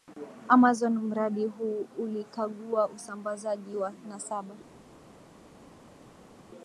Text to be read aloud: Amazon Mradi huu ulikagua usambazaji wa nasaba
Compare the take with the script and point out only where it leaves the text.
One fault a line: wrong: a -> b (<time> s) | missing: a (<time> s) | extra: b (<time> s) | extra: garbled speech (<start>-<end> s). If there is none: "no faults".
no faults